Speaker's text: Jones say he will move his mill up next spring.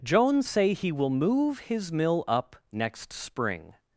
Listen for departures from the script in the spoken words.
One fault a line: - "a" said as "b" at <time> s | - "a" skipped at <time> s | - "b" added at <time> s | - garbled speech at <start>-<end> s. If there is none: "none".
none